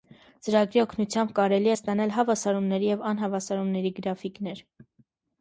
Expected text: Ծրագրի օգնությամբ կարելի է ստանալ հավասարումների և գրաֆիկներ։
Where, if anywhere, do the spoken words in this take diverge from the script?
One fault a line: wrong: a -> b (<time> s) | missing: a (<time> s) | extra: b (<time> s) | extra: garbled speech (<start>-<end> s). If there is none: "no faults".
extra: անհավասարումների (3.1 s)